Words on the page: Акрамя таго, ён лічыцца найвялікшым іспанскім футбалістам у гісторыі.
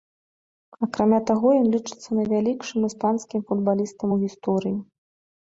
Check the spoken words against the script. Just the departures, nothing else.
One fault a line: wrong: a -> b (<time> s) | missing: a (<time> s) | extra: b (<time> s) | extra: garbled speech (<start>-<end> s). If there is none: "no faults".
no faults